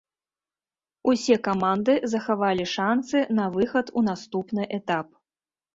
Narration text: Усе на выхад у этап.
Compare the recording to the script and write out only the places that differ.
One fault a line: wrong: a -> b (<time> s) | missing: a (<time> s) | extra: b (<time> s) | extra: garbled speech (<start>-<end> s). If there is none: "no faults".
extra: каманды захавалі шанцы (1.5 s)
extra: наступны (4.1 s)